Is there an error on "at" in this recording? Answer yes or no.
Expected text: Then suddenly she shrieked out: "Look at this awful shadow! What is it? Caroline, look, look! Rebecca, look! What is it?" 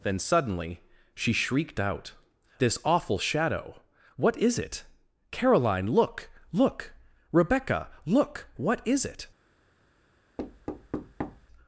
yes